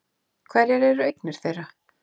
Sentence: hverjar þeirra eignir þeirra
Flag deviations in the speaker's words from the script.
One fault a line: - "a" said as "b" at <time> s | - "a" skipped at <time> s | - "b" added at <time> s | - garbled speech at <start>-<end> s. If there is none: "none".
- "þeirra" said as "eru" at 0.9 s